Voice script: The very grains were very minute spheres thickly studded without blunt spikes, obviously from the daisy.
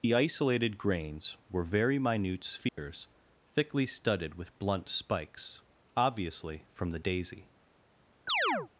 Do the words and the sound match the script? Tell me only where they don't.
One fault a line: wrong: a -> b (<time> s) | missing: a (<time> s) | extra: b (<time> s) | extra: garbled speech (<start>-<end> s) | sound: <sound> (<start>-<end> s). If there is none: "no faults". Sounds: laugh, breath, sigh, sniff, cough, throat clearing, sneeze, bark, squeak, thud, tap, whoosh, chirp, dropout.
wrong: very -> isolated (0.1 s)
sound: dropout (2.7-2.8 s)
wrong: without -> with (4.3 s)
sound: chirp (8.3-8.7 s)